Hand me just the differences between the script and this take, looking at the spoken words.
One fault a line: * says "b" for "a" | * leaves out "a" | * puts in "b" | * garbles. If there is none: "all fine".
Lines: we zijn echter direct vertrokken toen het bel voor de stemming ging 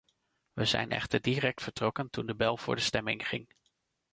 * says "de" for "het"